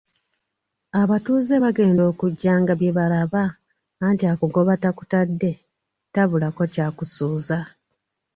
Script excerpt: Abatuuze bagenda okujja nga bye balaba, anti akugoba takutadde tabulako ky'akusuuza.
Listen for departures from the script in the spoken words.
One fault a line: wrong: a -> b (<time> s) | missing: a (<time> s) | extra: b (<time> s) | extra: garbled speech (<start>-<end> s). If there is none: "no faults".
no faults